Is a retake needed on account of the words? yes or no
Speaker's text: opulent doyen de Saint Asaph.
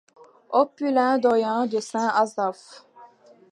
no